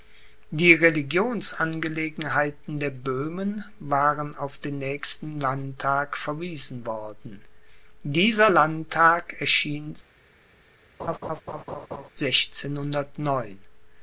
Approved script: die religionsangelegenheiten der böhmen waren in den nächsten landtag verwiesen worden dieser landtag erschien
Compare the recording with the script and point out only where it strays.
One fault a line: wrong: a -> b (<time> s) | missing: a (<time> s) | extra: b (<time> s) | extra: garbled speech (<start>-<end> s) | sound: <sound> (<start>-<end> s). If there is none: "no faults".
wrong: in -> auf (4.3 s)
sound: laugh (11.0-12.1 s)